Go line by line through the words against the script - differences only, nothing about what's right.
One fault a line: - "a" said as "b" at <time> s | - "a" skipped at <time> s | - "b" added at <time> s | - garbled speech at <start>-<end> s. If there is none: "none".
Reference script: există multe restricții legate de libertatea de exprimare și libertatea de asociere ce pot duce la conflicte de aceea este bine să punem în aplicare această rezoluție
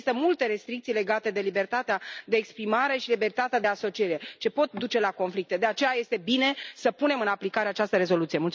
none